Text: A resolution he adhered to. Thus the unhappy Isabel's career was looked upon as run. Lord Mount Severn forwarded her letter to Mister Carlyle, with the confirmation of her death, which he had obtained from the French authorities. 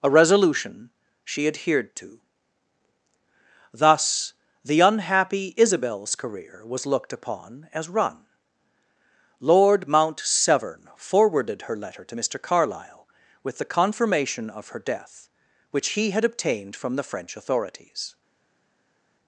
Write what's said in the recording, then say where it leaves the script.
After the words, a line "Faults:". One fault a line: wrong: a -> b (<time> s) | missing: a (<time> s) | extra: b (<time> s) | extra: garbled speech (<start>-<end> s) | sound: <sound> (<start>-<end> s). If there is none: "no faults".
A resolution she adhered to. Thus the unhappy Isabel's career was looked upon as run. Lord Mount Severn forwarded her letter to Mister Carlyle, with the confirmation of her death, which he had obtained from the French authorities.
Faults:
wrong: he -> she (1.2 s)